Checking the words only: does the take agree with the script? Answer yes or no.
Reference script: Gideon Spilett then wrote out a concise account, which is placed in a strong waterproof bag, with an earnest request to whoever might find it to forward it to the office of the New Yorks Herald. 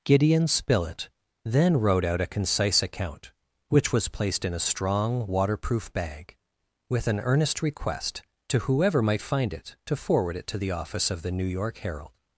no